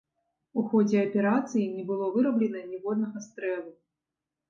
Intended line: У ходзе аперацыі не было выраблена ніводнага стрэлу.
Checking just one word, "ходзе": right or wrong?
right